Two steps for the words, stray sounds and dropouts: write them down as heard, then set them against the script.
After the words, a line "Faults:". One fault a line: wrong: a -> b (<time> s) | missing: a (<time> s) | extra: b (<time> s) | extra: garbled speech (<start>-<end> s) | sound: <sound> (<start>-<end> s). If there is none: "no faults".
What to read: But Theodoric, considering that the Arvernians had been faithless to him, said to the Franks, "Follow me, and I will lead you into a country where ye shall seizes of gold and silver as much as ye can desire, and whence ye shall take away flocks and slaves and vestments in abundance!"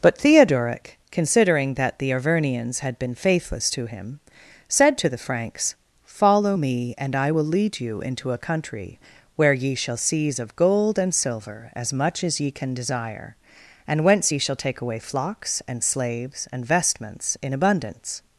But Theodoric, considering that the Arvernians had been faithless to him, said to the Franks, "Follow me, and I will lead you into a country where ye shall seize of gold and silver as much as ye can desire, and whence ye shall take away flocks and slaves and vestments in abundance!"
Faults:
wrong: seizes -> seize (10.0 s)